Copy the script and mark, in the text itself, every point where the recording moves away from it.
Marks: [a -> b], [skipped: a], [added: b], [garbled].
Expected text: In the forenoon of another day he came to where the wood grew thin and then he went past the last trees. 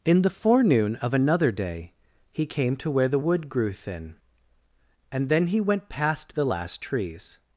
In the forenoon of another day he came to where the wood grew thin and then he went past the last trees.